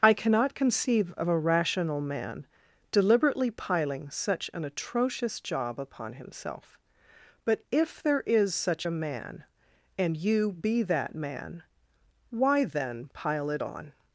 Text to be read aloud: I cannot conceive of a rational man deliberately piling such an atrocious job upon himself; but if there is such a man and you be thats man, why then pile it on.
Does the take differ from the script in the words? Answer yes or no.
yes